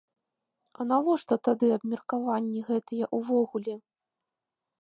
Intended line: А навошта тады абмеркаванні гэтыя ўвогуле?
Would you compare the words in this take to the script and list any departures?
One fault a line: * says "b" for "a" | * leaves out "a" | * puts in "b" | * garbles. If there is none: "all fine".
all fine